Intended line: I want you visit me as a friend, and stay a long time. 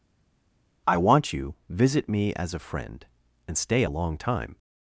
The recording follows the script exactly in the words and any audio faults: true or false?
true